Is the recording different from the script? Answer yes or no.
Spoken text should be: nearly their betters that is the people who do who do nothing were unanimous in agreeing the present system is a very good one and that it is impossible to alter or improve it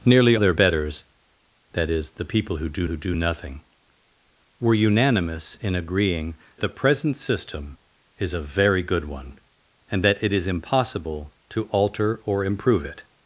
no